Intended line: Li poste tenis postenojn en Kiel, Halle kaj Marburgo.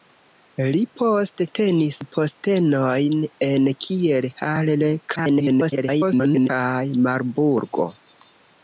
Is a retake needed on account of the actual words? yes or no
yes